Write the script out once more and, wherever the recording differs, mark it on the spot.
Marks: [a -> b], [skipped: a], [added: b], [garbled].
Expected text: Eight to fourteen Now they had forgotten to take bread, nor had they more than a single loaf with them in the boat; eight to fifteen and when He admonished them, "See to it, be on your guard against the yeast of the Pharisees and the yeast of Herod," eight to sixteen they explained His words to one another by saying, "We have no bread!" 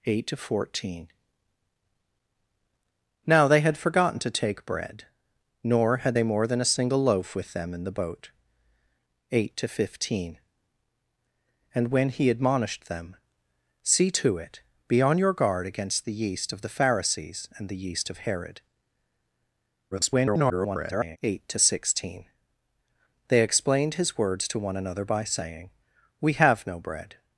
Eight to fourteen Now they had forgotten to take bread, nor had they more than a single loaf with them in the boat; eight to fifteen and when He admonished them, "See to it, be on your guard against the yeast of the Pharisees and the yeast of Herod," [garbled] eight to sixteen they explained His words to one another by saying, "We have no bread!"